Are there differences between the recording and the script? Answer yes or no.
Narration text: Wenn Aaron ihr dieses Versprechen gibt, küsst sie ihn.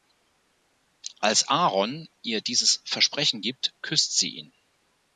yes